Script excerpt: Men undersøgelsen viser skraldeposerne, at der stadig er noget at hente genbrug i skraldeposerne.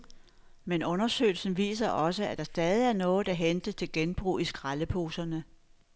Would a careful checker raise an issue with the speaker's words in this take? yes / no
yes